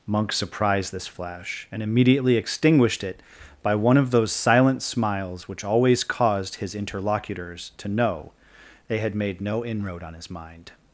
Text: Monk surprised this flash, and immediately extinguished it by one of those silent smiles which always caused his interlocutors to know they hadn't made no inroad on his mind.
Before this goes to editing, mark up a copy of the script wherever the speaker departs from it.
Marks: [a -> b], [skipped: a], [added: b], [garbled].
Monk surprised this flash, and immediately extinguished it by one of those silent smiles which always caused his interlocutors to know they [hadn't -> had] made no inroad on his mind.